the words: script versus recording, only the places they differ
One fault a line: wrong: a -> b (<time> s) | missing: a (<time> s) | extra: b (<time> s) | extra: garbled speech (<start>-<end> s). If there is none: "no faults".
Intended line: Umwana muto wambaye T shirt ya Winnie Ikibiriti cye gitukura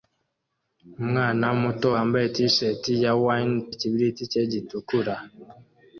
no faults